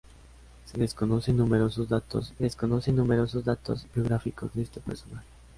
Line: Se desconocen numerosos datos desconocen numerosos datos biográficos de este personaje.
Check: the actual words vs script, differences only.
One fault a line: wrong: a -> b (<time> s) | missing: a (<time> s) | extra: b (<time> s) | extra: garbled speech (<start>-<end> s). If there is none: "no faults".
no faults